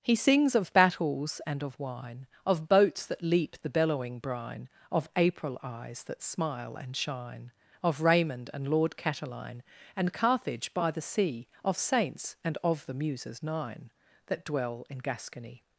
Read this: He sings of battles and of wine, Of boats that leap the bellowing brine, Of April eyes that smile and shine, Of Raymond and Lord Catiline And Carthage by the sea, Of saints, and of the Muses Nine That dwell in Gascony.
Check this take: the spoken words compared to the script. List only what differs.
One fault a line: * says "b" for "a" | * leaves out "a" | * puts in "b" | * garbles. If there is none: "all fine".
all fine